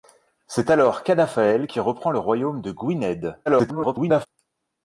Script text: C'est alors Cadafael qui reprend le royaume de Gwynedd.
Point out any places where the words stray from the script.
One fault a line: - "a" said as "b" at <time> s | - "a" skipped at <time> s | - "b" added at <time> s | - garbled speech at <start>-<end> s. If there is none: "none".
- garbled speech at 3.5-4.3 s